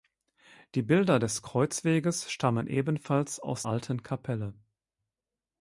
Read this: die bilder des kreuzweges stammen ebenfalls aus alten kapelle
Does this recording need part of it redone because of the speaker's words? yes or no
no